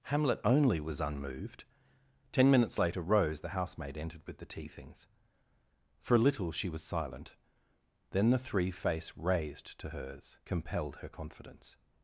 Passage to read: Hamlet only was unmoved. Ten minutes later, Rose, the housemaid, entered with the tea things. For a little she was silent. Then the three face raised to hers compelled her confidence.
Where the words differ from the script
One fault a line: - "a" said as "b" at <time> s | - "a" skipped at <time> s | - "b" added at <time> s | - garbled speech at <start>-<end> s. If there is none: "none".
none